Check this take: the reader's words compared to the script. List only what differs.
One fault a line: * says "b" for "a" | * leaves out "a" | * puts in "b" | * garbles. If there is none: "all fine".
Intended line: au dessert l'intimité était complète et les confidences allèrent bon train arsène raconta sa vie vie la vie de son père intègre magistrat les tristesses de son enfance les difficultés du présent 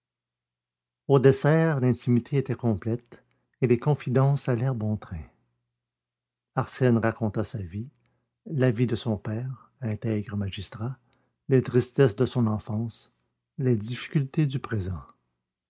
* leaves out "vie"